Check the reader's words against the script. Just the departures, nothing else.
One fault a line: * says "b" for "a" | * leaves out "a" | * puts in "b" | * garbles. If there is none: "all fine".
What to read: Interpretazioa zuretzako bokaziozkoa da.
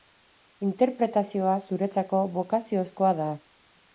all fine